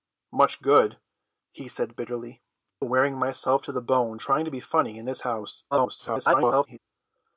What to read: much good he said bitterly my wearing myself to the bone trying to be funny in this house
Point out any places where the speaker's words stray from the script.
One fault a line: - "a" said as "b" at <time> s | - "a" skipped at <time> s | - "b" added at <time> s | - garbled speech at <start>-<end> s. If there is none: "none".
- "my" skipped at 2.4 s
- garbled speech at 5.7-6.8 s